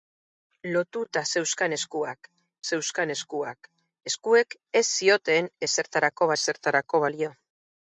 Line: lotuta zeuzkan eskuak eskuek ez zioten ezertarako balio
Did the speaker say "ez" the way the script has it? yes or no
yes